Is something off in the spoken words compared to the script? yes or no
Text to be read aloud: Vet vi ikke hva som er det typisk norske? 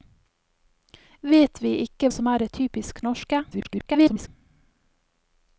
yes